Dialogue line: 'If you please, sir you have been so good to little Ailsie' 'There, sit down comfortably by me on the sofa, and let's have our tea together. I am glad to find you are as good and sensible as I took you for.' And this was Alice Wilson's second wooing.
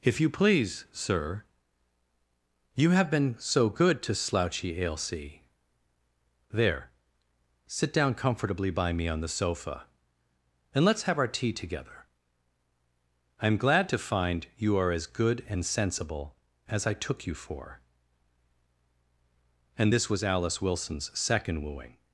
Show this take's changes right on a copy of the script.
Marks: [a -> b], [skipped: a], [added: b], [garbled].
'If you please, sir you have been so good to [little -> slouchy] Ailsie' 'There, sit down comfortably by me on the sofa, and let's have our tea together. I am glad to find you are as good and sensible as I took you for.' And this was Alice Wilson's second wooing.